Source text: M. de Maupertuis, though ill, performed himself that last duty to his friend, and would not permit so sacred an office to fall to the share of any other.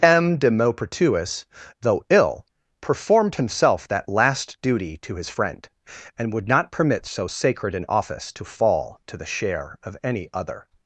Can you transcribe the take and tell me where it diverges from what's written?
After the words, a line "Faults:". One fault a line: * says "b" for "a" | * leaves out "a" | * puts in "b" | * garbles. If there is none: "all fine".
M. de Maupertuis, though ill, performed himself that last duty to his friend, and would not permit so sacred an office to fall to the share of any other.
Faults:
all fine